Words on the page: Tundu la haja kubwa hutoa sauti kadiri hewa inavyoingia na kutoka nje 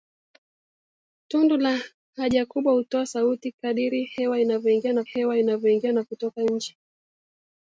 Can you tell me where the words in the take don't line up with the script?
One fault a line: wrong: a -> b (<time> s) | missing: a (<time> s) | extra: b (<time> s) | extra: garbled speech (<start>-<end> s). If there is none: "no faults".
extra: hewa inavyoingia na (5.0 s)